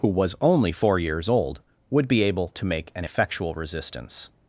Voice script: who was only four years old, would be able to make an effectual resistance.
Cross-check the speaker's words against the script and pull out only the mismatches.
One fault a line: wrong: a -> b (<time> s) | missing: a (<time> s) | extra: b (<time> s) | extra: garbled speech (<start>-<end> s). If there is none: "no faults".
no faults